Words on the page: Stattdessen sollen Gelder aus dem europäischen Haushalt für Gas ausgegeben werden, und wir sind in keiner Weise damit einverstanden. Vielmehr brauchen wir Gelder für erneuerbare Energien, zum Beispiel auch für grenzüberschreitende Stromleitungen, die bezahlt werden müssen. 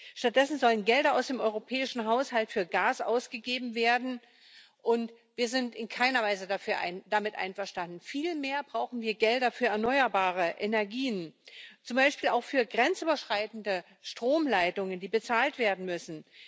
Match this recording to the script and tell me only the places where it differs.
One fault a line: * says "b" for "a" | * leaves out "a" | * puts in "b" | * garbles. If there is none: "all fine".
all fine